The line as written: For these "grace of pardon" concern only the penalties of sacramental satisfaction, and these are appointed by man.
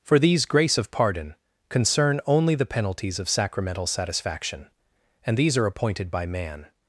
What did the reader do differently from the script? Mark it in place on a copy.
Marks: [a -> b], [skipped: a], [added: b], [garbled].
For these "grace of pardon" concern only the penalties of sacramental satisfaction, and these are appointed by man.